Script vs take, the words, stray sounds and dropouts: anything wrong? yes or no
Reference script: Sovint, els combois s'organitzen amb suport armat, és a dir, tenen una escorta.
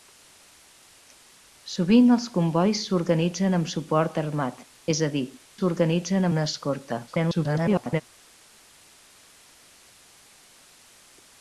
yes